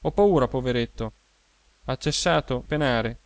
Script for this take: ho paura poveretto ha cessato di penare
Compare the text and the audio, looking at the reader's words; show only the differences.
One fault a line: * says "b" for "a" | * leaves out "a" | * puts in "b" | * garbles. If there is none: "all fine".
* leaves out "di"